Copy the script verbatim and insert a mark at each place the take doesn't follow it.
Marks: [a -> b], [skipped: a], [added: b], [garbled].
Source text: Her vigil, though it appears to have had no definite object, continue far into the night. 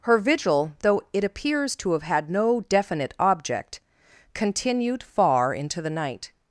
Her vigil, though it appears to have had no definite object, [continue -> continued] far into the night.